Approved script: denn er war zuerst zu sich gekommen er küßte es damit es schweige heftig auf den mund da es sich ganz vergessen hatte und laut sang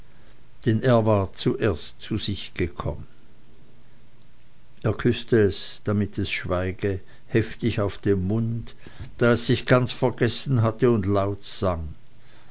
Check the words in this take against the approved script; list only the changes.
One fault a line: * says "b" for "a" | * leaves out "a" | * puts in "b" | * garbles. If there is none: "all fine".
all fine